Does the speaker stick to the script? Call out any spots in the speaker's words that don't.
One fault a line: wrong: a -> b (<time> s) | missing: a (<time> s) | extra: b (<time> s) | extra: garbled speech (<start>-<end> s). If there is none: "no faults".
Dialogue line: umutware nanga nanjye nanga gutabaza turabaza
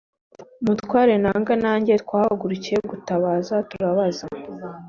wrong: nanga -> twahagurukiye (2.0 s)